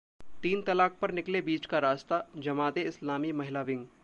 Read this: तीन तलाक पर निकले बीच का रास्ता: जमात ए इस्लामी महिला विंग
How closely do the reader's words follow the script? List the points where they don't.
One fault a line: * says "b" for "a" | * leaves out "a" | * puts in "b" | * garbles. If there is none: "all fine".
all fine